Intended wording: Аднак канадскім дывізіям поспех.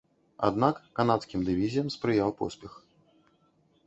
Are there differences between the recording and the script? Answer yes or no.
yes